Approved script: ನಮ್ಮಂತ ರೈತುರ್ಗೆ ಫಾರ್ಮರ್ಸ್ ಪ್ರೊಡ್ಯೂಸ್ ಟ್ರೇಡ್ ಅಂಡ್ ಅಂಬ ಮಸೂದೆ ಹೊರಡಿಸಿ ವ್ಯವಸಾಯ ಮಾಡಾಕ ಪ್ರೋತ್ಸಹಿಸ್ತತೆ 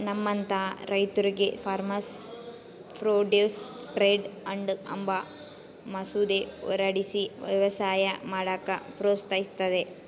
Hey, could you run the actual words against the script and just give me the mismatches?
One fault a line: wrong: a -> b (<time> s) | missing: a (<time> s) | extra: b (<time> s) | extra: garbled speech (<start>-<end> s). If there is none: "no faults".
no faults